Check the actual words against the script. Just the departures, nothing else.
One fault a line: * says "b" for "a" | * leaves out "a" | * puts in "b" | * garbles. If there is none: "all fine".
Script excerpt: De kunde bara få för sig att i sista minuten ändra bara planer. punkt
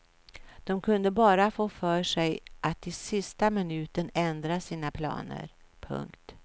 * says "sina" for "bara"